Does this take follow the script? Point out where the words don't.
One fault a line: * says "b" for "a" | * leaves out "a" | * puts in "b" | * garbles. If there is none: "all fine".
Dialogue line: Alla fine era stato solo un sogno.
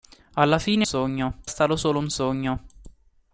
* says "sogno" for "era"